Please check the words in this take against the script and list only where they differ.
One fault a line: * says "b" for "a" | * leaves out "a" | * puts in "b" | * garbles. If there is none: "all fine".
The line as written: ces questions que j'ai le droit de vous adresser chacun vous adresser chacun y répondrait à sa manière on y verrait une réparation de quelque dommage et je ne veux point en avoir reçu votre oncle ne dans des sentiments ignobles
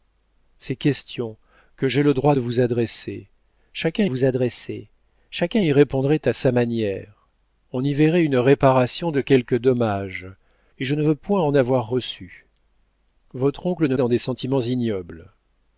all fine